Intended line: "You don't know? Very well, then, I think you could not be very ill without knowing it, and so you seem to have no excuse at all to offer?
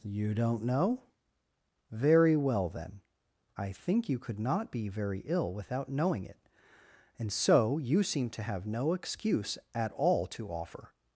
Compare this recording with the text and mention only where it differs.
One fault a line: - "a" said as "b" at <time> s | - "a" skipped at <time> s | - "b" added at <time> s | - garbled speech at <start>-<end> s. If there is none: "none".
none